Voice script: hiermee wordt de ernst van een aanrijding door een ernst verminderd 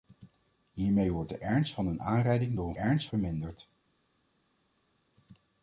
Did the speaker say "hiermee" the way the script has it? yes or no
yes